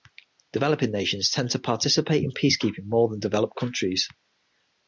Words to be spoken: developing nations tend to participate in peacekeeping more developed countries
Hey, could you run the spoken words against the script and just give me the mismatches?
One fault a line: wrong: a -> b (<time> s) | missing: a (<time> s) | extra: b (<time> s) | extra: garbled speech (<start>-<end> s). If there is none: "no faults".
extra: than (3.1 s)